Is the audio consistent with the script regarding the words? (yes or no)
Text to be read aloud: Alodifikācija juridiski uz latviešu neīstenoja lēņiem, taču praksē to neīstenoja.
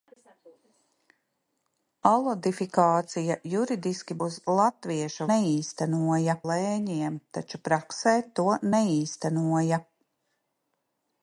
yes